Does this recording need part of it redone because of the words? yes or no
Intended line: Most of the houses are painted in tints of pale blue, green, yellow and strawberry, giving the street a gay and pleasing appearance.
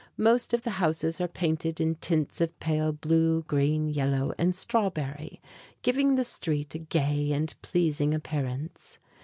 no